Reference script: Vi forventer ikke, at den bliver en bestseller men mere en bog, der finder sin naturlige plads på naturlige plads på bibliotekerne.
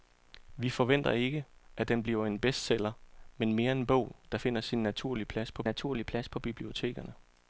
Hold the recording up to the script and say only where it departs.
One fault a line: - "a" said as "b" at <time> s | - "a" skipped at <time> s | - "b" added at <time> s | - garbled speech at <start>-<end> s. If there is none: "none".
none